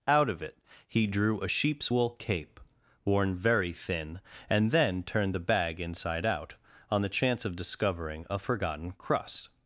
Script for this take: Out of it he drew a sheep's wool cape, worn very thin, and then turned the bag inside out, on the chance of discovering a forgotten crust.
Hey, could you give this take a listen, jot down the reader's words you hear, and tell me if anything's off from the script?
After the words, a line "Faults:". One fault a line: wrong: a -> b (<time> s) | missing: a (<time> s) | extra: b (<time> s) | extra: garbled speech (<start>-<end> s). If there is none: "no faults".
Out of it he drew a sheep's wool cape, worn very thin, and then turned the bag inside out, on the chance of discovering a forgotten crust.
Faults:
no faults